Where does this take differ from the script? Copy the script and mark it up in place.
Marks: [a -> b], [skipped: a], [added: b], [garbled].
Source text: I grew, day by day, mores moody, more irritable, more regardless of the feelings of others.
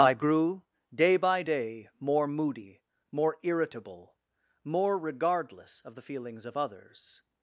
I grew, day by day, [mores -> more] moody, more irritable, more regardless of the feelings of others.